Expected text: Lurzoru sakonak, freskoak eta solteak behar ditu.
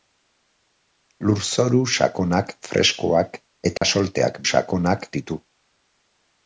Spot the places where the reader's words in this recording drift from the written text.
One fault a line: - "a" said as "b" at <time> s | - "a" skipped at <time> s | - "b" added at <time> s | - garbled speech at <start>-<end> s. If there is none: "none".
- "behar" said as "sakonak" at 4.5 s